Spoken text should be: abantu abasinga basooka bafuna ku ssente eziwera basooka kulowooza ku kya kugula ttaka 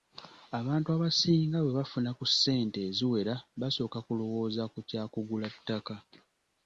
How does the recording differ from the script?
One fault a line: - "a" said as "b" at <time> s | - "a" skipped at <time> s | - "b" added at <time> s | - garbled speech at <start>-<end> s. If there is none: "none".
- "basooka" said as "bwe" at 1.6 s